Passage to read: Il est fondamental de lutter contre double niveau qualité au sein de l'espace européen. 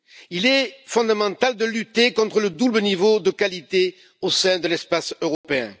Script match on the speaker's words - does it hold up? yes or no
no